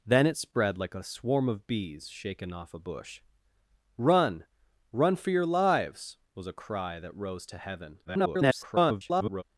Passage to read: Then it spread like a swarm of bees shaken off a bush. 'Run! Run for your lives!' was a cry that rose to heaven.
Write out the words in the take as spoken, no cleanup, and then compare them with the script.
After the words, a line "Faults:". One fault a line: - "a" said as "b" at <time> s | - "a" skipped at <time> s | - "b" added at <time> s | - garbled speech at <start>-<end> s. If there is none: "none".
Then it spread like a swarm of bees shaken off a bush. 'Run! Run for your lives!' was a cry that rose to heaven. [garbled]
Faults:
- garbled speech at 8.1-9.4 s